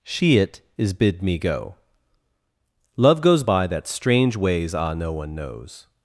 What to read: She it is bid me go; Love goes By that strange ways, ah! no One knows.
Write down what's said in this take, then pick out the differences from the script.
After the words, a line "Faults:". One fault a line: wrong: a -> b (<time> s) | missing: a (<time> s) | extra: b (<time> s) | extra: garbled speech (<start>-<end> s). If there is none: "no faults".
She it is bid me go; Love goes By that strange ways, ah! no One knows.
Faults:
no faults